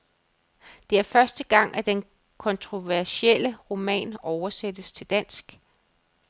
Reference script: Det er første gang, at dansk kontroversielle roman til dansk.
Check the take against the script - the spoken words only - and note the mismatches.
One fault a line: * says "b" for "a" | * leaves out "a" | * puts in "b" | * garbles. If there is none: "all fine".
* says "den" for "dansk"
* puts in "oversættes"